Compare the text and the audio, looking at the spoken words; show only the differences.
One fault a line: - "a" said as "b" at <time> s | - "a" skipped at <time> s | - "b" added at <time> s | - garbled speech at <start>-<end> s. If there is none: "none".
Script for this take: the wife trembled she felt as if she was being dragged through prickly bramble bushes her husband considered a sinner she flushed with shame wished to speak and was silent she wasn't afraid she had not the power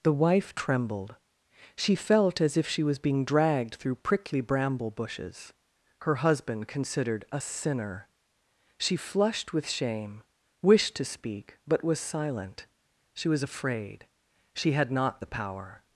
- "and" said as "but" at 11.7 s
- "wasn't" said as "was" at 13.3 s